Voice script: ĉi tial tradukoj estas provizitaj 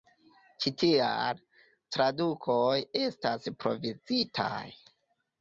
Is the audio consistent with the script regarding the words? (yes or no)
yes